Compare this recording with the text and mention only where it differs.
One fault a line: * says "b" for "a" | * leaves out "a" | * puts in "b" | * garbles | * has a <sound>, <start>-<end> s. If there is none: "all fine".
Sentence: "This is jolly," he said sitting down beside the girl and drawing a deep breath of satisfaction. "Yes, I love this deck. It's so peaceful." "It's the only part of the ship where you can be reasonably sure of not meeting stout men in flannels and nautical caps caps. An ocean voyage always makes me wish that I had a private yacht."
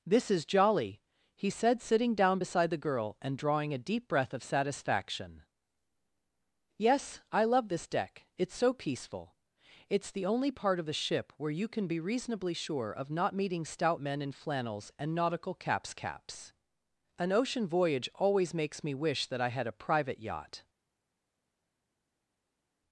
all fine